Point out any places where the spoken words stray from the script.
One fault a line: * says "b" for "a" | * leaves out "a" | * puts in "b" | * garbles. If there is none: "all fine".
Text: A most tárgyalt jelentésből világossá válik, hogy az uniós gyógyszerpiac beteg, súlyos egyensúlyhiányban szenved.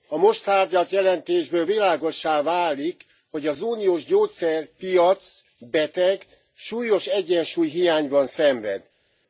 all fine